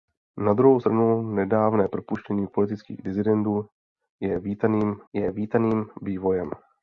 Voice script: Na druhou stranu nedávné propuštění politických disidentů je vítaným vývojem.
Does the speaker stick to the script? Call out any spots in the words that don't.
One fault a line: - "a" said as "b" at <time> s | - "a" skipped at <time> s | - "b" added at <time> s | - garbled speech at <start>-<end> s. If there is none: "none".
- "je vítaným" added at 5.1 s